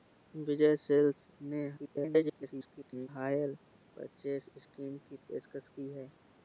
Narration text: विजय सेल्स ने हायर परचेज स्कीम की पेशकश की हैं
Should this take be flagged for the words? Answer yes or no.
yes